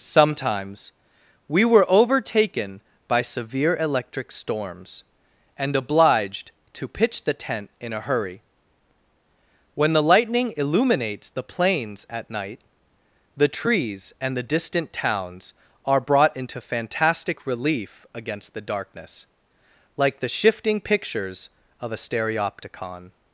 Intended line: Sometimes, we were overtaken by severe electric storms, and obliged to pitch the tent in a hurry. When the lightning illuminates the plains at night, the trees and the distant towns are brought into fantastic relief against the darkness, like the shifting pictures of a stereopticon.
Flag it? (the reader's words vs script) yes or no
no